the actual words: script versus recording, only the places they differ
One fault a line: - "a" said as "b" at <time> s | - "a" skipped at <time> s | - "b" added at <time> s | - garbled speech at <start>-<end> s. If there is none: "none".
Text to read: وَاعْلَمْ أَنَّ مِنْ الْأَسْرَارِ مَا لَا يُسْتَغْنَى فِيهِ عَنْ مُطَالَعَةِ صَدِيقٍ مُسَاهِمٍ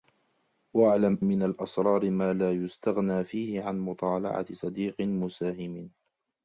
- "أَنَّ" skipped at 1.2 s